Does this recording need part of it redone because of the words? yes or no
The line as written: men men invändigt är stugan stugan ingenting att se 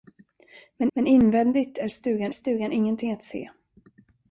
no